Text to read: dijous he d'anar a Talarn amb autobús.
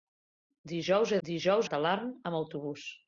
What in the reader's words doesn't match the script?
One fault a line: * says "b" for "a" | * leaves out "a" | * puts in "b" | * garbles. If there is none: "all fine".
* says "dijous" for "d'anar"